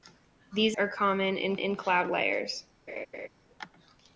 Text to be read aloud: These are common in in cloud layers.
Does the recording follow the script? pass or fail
pass